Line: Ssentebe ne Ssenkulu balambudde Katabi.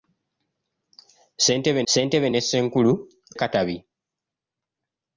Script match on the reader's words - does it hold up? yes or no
no